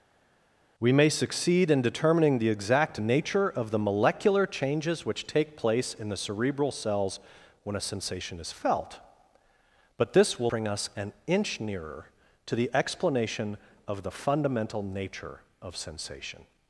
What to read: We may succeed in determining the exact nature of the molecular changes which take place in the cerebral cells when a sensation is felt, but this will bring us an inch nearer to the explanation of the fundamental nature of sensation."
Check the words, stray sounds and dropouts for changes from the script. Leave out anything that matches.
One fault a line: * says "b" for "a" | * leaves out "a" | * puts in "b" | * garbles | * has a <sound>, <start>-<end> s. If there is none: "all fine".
all fine